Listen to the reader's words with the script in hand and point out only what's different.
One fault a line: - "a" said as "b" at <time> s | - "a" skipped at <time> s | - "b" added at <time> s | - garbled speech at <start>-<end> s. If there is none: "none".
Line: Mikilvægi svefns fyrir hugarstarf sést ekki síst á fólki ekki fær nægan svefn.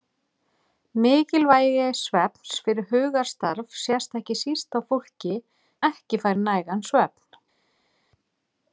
none